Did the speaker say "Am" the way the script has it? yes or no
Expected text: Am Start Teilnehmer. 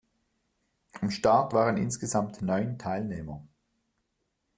yes